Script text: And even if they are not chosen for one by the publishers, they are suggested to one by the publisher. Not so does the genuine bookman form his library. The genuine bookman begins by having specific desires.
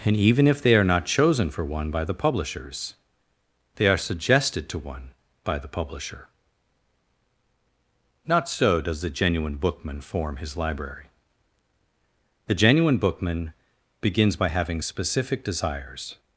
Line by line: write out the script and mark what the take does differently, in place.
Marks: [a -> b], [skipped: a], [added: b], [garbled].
And even if they are not chosen for one by the publishers, they are suggested to one by the publisher. Not so does the genuine bookman form his library. The genuine bookman begins by having specific desires.